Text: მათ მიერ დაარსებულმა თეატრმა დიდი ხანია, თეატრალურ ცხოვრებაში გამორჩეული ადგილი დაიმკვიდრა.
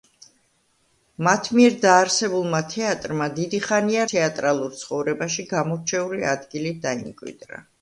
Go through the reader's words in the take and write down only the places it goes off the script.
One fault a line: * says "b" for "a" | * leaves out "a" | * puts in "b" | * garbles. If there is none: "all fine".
all fine